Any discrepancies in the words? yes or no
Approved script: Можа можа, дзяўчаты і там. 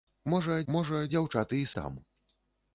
no